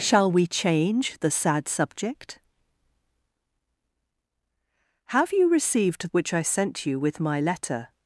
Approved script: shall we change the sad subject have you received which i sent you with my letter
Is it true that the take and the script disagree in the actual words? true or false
false